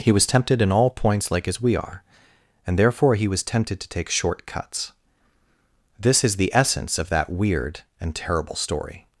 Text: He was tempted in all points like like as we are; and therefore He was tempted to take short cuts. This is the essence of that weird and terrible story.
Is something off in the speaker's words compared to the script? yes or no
yes